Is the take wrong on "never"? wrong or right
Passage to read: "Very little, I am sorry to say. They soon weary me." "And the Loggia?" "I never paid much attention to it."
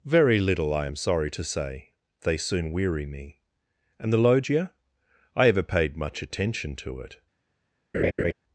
wrong